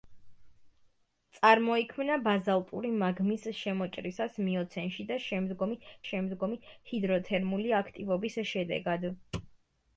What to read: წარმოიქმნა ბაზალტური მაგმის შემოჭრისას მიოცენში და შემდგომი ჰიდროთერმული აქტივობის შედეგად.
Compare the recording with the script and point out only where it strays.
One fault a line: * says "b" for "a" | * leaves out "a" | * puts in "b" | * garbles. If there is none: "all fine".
* puts in "შემდგომი"